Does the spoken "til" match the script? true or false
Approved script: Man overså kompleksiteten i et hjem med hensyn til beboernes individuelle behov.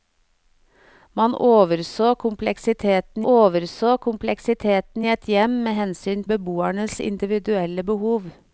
false